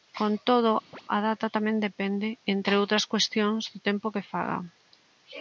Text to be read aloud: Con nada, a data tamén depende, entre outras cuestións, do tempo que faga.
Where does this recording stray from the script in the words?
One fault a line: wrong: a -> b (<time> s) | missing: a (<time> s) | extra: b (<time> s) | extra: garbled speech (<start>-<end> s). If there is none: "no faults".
wrong: nada -> todo (0.5 s)